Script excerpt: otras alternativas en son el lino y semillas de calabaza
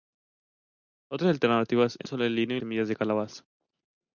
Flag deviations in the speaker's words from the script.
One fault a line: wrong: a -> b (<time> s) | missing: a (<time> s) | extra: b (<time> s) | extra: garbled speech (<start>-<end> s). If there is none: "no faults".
no faults